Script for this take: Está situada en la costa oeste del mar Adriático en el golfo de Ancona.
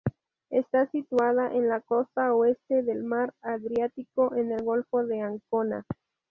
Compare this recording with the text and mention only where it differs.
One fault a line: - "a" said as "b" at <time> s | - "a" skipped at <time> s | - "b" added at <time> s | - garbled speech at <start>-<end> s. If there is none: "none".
none